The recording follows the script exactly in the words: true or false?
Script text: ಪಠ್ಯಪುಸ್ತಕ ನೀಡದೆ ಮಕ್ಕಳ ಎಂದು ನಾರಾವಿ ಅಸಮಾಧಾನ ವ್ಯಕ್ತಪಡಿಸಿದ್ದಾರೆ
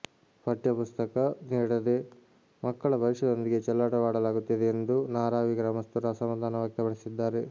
false